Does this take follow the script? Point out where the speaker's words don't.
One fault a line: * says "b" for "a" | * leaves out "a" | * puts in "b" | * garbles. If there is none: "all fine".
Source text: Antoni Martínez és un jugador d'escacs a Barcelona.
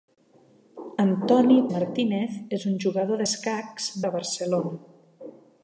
all fine